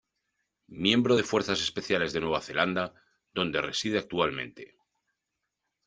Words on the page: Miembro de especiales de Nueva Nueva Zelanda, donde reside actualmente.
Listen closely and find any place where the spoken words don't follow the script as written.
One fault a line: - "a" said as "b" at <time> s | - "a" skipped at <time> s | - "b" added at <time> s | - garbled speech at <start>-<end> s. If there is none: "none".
- "fuerzas" added at 1.2 s
- "Nueva" skipped at 2.4 s